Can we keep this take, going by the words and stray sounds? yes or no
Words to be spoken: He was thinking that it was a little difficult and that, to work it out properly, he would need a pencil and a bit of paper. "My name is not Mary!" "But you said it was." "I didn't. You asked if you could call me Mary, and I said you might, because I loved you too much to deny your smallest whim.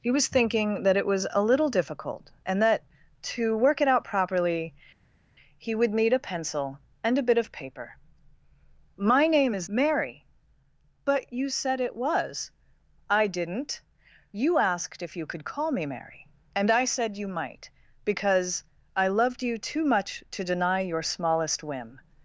no